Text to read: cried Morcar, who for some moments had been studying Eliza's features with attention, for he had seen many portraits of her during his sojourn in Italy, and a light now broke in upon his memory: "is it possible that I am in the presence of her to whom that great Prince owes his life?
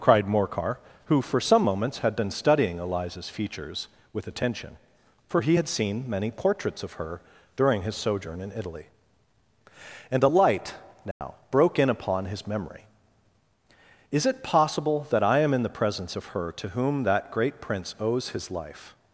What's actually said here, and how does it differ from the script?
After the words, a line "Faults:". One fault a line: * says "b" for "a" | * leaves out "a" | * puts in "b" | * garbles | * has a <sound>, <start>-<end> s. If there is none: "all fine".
cried Morcar, who for some moments had been studying Eliza's features with attention, for he had seen many portraits of her during his sojourn in Italy, and a light now broke in upon his memory: "is it possible that I am in the presence of her to whom that great Prince owes his life?
Faults:
* has a dropout, 11.1-11.2 s